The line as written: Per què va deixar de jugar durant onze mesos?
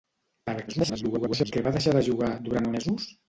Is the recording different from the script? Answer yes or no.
yes